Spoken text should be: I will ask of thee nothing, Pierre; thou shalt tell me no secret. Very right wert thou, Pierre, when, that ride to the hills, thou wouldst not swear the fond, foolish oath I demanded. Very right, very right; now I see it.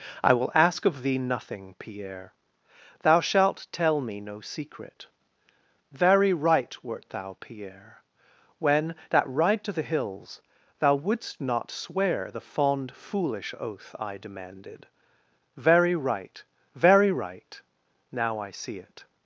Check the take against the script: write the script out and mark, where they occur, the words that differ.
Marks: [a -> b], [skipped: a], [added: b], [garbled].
I will ask of thee nothing, Pierre; thou shalt tell me no secret. Very right wert thou, Pierre, when, that ride to the hills, thou wouldst not swear the fond, foolish oath I demanded. Very right, very right; now I see it.